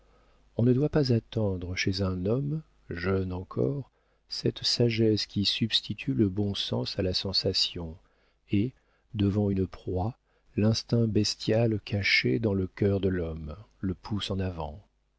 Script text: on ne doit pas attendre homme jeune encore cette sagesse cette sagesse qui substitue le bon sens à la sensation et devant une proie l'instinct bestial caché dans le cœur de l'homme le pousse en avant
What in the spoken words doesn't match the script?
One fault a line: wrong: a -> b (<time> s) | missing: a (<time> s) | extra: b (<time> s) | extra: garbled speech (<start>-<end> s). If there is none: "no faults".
extra: chez un (1.8 s)
missing: cette sagesse (5.3 s)